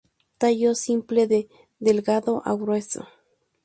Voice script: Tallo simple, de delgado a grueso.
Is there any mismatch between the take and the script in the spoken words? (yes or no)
no